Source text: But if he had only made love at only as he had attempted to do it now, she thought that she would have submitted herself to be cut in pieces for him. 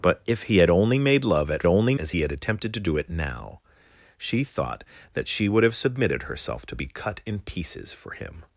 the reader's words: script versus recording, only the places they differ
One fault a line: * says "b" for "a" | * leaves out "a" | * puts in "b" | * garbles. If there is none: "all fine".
all fine